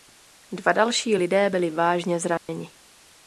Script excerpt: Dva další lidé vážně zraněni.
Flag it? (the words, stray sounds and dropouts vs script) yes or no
yes